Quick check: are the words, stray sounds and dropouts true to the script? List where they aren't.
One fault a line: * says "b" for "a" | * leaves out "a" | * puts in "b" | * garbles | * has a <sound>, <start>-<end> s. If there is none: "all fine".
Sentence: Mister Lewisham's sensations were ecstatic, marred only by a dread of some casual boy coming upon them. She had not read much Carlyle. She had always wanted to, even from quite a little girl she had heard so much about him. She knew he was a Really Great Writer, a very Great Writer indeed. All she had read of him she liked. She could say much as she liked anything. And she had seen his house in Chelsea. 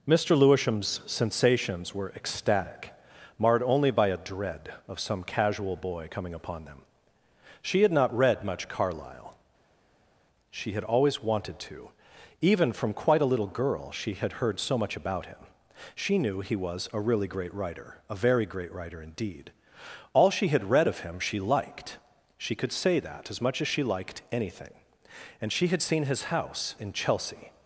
* puts in "that As"